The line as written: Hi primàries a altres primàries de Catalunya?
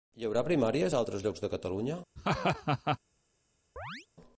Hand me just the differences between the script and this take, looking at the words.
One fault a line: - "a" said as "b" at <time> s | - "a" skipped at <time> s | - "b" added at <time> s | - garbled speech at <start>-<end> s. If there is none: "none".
- "haurà" added at 0.3 s
- "primàries" said as "llocs" at 1.2 s